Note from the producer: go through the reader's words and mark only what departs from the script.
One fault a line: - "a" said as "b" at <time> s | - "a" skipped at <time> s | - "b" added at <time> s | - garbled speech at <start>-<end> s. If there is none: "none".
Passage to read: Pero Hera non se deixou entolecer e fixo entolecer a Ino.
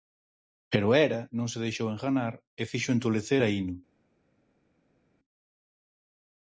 - "entolecer" said as "enganar" at 1.9 s